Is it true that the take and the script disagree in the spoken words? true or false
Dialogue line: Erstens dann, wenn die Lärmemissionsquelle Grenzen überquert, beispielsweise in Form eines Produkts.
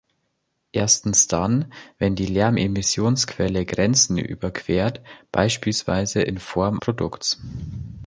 true